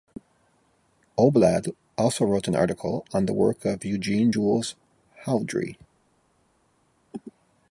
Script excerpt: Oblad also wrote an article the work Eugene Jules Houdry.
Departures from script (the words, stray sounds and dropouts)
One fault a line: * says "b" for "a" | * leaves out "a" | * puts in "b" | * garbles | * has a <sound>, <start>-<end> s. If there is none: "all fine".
* puts in "on"
* puts in "of"